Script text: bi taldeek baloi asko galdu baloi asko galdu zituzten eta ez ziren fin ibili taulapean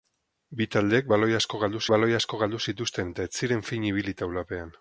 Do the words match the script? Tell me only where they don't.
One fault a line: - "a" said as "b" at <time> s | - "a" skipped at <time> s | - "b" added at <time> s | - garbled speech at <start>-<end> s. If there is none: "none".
none